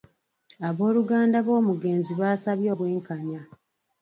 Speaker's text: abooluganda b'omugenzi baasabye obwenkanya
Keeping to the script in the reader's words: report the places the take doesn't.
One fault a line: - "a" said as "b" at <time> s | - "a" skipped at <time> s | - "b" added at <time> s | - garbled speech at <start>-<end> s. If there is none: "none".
none